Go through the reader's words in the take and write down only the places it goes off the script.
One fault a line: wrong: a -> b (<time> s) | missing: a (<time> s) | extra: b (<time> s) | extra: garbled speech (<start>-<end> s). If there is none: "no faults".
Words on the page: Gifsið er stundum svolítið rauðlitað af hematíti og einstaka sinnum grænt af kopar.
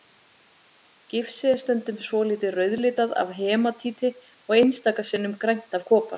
no faults